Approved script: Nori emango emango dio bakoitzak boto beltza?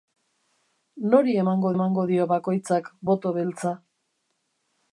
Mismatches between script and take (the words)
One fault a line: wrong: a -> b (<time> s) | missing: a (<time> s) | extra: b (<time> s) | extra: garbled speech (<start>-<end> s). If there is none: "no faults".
no faults